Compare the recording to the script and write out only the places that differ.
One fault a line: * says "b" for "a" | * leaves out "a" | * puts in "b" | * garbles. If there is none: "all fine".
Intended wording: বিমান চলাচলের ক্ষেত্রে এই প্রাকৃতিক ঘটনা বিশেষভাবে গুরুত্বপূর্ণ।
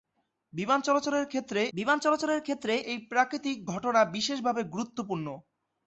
* puts in "বিমান চলাচলের ক্ষেত্রে"